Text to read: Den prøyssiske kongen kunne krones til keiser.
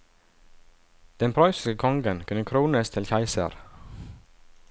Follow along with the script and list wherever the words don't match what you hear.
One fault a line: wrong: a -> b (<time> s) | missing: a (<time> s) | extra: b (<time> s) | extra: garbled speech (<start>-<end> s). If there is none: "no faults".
no faults